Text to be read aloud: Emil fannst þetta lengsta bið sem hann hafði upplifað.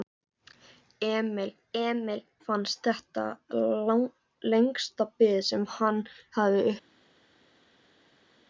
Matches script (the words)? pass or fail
fail